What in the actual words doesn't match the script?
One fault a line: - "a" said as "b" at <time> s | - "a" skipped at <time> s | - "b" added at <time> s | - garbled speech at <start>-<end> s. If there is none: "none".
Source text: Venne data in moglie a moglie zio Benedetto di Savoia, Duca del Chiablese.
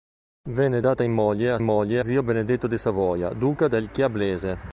none